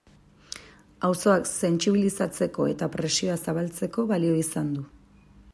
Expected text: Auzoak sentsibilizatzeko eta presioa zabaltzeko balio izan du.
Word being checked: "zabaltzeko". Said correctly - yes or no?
yes